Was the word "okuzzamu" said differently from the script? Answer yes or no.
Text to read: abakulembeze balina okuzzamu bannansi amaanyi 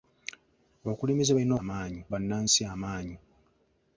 yes